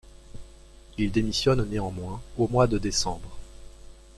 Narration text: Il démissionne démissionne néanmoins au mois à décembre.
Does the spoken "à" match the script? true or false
false